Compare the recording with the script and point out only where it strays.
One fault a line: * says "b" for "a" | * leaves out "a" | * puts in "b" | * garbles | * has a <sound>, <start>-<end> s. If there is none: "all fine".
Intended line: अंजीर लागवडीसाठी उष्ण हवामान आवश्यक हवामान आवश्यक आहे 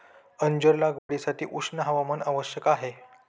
* has a dropout, 1.0-1.1 s
* leaves out "हवामान आवश्यक"